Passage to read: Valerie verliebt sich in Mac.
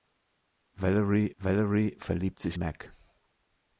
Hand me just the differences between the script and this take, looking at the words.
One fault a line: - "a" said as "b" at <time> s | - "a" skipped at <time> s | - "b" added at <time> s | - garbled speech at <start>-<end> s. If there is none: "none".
- "valerie" added at 1.4 s
- "in" skipped at 2.6 s